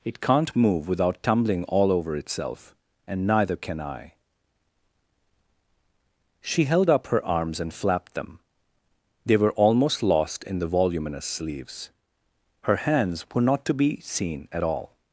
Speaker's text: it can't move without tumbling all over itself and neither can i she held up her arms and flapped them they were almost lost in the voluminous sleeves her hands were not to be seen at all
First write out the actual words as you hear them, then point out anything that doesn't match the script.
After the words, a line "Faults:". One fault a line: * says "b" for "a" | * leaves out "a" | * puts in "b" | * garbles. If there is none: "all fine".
it can't move without tumbling all over itself and neither can i she held up her arms and flapped them they were almost lost in the voluminous sleeves her hands were not to be seen at all
Faults:
all fine